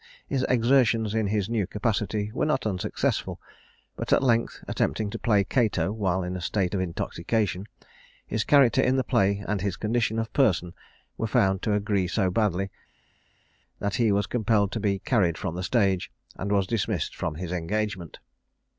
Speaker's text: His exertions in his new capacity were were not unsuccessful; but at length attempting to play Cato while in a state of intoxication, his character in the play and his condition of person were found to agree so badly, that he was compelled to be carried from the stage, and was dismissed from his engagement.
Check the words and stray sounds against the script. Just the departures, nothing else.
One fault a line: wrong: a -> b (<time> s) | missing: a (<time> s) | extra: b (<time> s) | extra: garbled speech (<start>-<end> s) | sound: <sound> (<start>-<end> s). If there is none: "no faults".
missing: were (2.5 s)